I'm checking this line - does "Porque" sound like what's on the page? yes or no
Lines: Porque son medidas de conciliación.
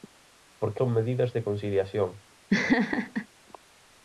yes